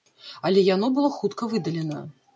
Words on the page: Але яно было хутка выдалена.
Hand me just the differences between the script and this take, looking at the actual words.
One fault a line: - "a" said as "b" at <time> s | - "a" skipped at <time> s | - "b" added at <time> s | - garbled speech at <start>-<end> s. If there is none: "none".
none